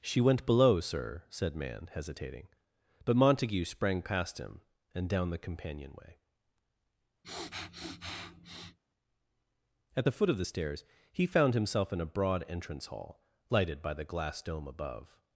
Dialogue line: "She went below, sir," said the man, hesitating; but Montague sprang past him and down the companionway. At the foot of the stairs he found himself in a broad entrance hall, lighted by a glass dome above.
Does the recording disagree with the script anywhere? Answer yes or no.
yes